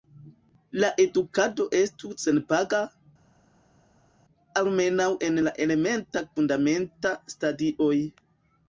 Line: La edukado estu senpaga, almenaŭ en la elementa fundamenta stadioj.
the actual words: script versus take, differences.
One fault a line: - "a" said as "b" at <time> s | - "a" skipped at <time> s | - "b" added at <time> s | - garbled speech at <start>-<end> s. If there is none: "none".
none